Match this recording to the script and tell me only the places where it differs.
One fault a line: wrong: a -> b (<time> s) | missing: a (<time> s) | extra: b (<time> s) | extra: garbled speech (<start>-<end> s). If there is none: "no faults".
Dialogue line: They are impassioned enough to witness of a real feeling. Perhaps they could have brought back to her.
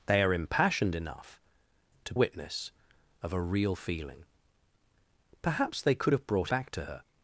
no faults